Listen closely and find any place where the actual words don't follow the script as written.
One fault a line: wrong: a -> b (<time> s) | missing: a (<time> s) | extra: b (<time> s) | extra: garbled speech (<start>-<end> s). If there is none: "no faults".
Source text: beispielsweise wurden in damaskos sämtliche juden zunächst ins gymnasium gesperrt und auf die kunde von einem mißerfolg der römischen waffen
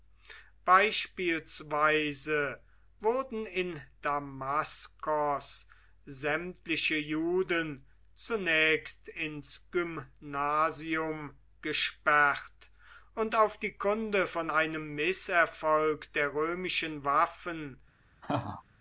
no faults